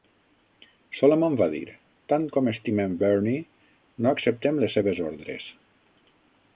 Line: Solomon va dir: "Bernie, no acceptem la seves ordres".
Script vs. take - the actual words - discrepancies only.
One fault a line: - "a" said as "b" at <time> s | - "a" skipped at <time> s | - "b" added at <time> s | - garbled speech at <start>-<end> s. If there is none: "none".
- "Tant com estimem" added at 2.1 s
- "la" said as "les" at 4.7 s